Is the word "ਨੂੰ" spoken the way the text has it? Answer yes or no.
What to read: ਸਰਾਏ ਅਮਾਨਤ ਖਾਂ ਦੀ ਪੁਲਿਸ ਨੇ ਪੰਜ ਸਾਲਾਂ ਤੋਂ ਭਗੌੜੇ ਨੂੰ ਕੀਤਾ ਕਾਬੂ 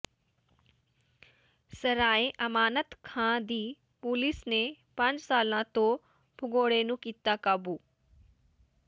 yes